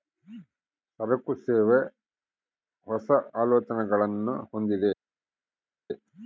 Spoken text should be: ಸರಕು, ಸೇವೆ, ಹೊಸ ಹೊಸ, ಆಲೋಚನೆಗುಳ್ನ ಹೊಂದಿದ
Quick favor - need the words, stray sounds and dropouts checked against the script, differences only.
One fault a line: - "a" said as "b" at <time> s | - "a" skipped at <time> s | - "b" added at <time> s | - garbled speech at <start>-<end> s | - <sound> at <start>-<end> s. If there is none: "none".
- "ಹೊಸ" skipped at 3.1 s